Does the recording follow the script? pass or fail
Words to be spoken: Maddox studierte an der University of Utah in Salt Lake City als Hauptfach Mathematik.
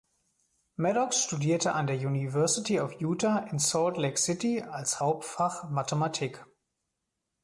pass